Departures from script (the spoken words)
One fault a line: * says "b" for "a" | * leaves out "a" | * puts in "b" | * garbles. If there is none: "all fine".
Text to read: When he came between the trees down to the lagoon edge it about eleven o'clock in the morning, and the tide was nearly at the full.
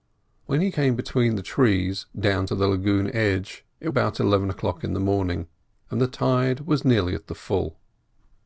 all fine